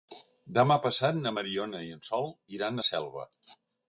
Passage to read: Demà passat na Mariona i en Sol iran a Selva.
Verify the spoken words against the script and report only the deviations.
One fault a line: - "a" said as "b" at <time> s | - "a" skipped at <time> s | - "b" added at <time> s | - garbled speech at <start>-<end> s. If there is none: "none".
none